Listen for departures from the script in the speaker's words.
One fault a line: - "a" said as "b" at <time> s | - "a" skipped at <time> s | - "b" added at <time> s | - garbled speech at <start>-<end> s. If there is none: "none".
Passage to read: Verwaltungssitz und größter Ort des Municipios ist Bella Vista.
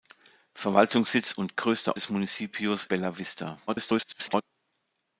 - "Ort" skipped at 2.0 s
- "ist" skipped at 2.9 s
- garbled speech at 3.7-4.4 s